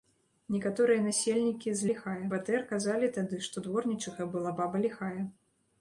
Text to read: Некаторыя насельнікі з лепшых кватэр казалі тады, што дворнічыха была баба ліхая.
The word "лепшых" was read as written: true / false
false